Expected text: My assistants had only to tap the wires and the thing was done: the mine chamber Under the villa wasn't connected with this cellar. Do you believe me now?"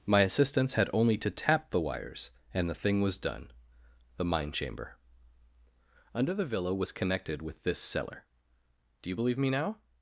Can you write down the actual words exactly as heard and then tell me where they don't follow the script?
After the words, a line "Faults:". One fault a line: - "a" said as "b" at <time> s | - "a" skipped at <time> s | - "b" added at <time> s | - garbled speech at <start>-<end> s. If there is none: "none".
My assistants had only to tap the wires and the thing was done: the mine chamber Under the villa was connected with this cellar. Do you believe me now?"
Faults:
- "wasn't" said as "was" at 6.7 s